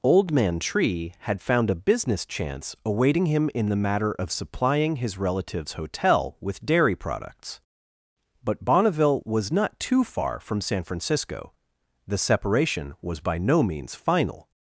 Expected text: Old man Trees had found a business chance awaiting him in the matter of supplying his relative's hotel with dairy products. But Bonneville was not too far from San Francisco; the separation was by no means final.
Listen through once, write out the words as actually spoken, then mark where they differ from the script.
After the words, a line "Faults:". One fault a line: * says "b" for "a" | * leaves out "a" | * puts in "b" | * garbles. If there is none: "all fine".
Old man Tree had found a business chance awaiting him in the matter of supplying his relative's hotel with dairy products. But Bonneville was not too far from San Francisco; the separation was by no means final.
Faults:
* says "Tree" for "Trees"